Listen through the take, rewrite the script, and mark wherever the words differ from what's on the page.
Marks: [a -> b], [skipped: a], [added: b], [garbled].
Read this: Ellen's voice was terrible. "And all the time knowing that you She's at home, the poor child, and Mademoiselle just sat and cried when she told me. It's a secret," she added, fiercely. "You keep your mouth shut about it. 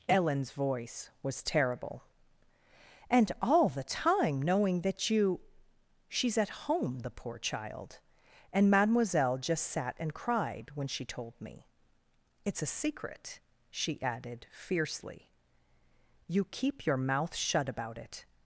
Ellen's voice was terrible. "And all the time knowing that you She's at home, the poor child, and Mademoiselle just sat and cried when she told me. It's a secret," she added, fiercely. "You keep your mouth shut about it.